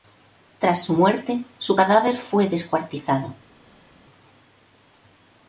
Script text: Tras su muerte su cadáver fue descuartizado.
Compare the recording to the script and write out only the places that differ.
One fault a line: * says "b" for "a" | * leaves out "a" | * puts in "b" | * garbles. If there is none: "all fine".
all fine